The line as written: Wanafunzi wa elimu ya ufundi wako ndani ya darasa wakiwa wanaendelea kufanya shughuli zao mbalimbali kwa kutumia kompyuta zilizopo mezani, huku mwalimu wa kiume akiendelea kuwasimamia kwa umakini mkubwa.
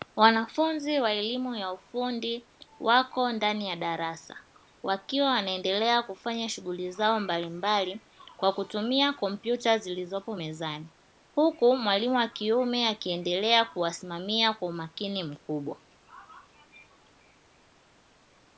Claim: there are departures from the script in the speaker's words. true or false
false